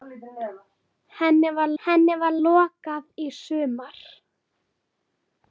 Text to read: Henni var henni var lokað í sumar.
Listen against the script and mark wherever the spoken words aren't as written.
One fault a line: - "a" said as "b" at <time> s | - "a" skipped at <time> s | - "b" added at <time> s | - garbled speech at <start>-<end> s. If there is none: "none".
none